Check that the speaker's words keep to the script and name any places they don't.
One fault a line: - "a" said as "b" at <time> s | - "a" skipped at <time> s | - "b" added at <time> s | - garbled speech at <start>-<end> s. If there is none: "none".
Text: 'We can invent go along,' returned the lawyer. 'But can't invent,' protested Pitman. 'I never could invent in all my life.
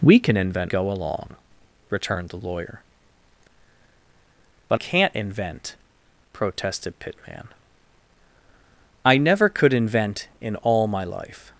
none